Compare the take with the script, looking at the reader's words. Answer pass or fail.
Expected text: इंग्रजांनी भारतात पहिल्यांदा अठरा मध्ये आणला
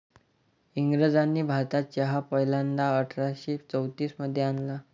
fail